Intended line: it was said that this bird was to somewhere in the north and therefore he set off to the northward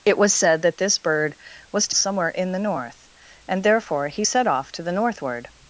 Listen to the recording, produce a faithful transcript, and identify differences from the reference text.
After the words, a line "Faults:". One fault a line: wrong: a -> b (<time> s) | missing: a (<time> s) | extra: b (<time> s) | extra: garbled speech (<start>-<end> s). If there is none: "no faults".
it was said that this bird was to somewhere in the north and therefore he set off to the northward
Faults:
no faults